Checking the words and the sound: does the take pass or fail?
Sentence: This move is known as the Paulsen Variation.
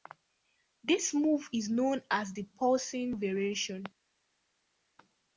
pass